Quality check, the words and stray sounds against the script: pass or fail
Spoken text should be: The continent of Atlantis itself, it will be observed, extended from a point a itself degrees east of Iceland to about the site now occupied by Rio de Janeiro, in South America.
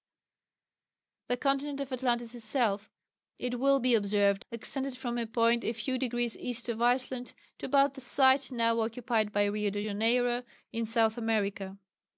fail